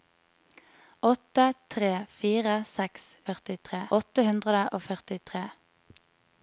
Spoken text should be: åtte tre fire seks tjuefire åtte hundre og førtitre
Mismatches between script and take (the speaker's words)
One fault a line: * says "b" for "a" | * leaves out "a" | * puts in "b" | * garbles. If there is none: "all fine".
* says "førtitre" for "tjuefire"